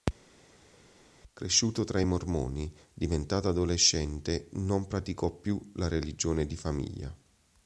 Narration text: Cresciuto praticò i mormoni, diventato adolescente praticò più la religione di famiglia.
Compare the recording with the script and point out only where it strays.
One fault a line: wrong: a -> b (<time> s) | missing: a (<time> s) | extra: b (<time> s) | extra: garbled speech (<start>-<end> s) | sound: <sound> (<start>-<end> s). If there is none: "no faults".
wrong: praticò -> tra (1.8 s)
extra: non (4.5 s)